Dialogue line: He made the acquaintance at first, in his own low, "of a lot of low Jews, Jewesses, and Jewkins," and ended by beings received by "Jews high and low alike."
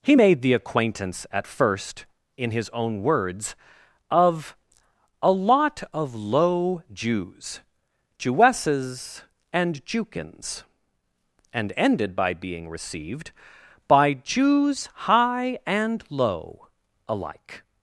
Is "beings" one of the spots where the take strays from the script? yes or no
yes